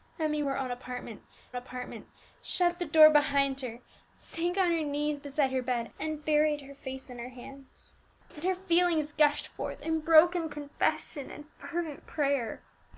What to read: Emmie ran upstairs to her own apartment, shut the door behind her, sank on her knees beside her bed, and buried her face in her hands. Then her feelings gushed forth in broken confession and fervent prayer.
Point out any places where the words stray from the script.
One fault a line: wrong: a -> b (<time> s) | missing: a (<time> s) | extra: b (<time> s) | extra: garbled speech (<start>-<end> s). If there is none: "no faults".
missing: ran upstairs to (0.4 s)
extra: apartment (1.5 s)